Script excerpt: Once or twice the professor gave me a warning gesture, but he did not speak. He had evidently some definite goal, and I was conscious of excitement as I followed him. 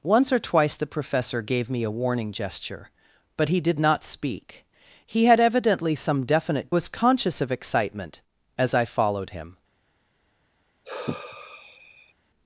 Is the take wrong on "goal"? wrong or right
wrong